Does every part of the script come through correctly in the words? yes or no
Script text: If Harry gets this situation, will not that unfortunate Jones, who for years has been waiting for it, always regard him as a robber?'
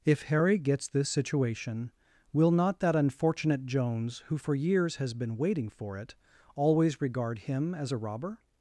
yes